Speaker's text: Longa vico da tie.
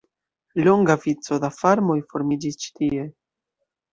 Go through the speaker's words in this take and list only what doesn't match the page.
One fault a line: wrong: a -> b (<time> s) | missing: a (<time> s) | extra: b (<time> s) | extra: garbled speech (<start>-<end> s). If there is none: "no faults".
extra: farmoj formiĝis ĉi (1.6 s)